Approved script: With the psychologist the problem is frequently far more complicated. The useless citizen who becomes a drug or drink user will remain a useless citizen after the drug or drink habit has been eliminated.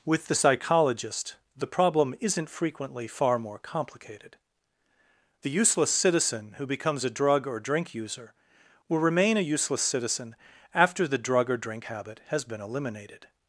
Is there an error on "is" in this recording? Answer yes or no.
yes